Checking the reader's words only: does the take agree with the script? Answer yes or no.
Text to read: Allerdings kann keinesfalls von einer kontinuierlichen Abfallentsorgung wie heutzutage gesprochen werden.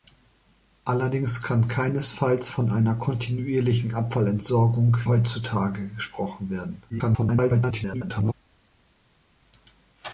no